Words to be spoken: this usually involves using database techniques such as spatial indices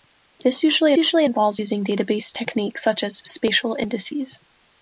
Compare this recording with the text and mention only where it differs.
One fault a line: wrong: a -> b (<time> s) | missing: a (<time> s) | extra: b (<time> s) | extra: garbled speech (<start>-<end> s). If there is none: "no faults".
extra: usually (1.0 s)